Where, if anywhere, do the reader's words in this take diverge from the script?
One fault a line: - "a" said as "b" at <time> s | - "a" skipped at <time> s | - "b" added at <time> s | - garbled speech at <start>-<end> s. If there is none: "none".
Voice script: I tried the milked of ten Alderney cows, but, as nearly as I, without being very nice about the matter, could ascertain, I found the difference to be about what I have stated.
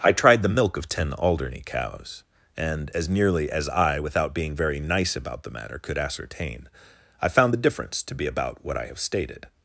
- "milked" said as "milk" at 0.5 s
- "but" said as "and" at 2.6 s